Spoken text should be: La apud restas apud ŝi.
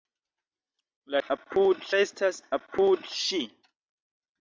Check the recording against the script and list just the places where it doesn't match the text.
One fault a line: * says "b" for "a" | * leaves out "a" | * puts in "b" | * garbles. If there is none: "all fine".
all fine